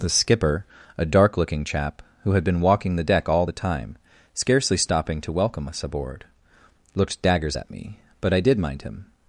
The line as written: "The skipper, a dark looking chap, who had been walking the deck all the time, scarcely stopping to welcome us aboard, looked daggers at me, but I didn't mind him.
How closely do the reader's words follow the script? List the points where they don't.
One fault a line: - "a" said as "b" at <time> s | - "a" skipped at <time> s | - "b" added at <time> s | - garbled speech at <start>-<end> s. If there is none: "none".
- "didn't" said as "did" at 8.4 s